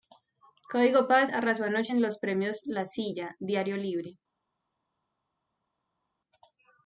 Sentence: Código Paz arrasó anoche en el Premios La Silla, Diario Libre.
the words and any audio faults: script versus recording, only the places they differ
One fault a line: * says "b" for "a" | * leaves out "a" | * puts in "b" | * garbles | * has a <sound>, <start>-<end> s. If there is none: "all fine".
* says "los" for "el"